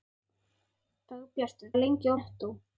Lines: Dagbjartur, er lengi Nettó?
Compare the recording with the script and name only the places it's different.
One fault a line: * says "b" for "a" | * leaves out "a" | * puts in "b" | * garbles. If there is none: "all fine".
all fine